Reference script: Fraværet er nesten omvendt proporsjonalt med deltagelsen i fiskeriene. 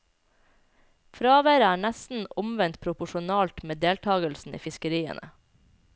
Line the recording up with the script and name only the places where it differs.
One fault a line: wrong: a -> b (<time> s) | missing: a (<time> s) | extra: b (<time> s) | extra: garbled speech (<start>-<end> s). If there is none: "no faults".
no faults